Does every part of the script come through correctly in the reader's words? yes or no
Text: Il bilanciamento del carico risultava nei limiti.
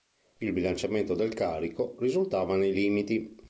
yes